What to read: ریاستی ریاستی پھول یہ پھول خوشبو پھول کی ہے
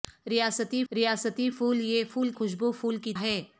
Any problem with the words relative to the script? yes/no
no